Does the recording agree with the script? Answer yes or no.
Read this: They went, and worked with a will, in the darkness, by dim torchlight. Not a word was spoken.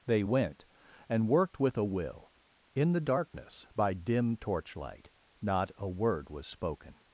yes